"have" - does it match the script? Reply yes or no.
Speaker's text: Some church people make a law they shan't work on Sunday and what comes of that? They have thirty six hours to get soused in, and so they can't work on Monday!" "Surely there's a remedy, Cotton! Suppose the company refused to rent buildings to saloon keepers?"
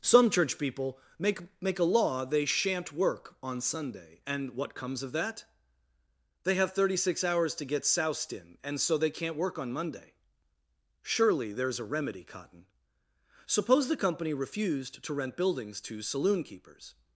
yes